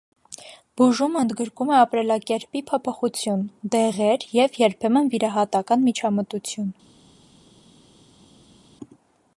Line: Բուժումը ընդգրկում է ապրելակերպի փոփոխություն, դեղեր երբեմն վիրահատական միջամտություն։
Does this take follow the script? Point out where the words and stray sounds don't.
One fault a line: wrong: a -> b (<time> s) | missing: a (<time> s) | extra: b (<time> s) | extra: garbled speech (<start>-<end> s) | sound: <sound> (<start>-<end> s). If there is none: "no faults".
extra: և (4.4 s)